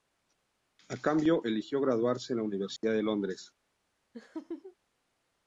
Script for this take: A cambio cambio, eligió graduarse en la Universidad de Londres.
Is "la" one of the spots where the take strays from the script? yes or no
no